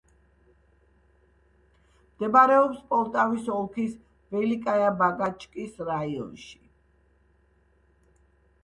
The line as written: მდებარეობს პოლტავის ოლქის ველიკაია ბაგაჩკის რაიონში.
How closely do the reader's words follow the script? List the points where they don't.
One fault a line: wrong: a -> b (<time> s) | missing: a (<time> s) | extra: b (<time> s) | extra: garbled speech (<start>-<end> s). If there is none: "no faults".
no faults